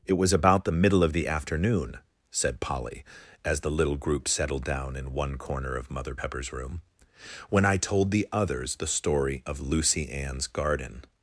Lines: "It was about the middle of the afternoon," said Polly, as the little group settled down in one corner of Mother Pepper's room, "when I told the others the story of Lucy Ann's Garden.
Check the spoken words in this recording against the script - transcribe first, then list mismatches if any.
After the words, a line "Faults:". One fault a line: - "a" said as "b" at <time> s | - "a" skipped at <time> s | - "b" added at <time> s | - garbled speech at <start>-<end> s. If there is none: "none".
"It was about the middle of the afternoon," said Polly, as the little group settled down in one corner of Mother Pepper's room, "when I told the others the story of Lucy Ann's Garden.
Faults:
none